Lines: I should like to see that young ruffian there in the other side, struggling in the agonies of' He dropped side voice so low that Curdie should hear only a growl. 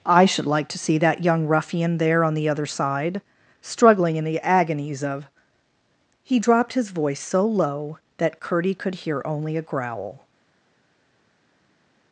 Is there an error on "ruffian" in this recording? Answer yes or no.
no